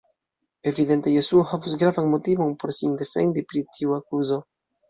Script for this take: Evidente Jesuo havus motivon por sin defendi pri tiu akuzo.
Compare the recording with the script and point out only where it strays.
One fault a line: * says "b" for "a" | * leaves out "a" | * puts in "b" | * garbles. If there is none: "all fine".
* puts in "gravan"